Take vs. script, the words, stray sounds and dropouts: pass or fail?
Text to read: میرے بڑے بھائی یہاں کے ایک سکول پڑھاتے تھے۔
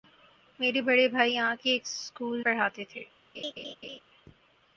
fail